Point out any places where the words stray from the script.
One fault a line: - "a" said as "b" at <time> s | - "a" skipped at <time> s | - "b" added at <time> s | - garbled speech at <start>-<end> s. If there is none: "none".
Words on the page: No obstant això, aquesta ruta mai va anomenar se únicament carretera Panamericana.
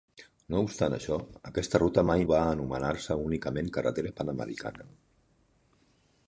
none